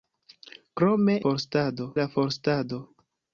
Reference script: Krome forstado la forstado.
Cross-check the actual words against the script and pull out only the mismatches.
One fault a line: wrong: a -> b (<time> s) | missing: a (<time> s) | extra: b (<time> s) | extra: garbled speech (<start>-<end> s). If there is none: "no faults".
no faults